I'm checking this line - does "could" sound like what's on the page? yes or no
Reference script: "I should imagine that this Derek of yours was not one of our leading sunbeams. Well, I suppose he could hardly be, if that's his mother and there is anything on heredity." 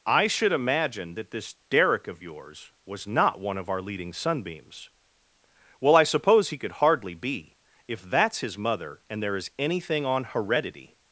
yes